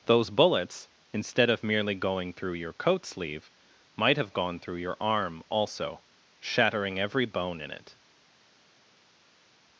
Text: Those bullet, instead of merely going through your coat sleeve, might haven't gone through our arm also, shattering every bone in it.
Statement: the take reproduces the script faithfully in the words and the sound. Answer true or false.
false